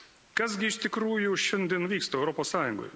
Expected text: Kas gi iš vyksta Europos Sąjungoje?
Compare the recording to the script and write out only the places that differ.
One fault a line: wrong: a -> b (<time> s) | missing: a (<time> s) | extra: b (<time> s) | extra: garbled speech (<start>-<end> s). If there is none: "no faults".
extra: tikrųjų šiandien (0.9 s)